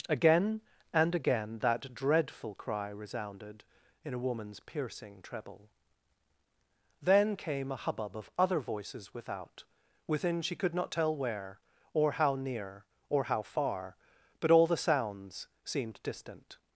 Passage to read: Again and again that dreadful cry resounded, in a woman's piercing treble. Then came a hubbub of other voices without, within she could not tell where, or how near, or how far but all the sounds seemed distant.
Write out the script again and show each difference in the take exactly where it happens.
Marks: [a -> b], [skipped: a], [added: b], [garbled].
Again and again that dreadful cry resounded, in a woman's piercing treble. Then came a hubbub of other voices without, within she could not tell where, or how near, or how far but all the sounds seemed distant.